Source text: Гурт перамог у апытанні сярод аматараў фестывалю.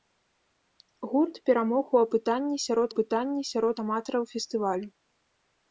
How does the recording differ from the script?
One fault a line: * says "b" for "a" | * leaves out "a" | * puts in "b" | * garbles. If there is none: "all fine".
* puts in "апытанні сярод"